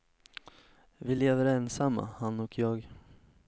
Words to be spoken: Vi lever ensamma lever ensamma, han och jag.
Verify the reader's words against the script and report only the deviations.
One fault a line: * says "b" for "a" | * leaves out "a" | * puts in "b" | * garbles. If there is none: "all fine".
* leaves out "lever ensamma"